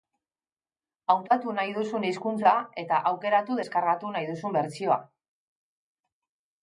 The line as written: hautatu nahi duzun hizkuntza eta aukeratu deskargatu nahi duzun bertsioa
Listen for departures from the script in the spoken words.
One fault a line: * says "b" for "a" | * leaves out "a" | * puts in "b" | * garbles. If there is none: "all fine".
all fine